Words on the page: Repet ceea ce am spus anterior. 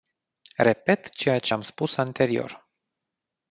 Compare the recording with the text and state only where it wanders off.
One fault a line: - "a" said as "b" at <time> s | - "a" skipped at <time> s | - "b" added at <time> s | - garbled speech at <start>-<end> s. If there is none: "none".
none